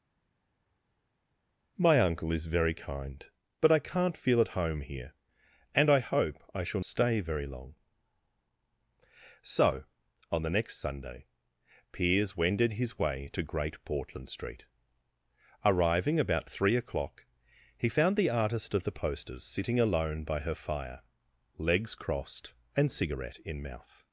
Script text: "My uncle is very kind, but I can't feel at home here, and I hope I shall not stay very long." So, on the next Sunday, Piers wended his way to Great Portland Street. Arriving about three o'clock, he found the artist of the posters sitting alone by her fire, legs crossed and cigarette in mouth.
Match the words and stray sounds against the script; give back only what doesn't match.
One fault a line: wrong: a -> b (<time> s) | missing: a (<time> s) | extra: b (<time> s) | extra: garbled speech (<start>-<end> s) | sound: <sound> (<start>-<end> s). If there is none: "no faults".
missing: not (6.8 s)